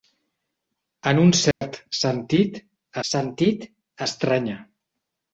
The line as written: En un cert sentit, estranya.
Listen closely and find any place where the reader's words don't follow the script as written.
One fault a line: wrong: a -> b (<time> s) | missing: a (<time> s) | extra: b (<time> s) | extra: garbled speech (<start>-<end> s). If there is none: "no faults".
extra: sentit (3.1 s)